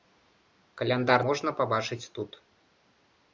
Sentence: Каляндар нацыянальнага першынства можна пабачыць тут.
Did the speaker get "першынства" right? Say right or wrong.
wrong